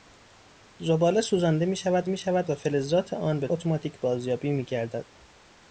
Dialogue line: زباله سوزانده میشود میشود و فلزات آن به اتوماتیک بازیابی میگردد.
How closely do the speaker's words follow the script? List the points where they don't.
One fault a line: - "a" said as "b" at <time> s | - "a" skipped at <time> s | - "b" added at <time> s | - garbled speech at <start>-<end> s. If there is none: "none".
none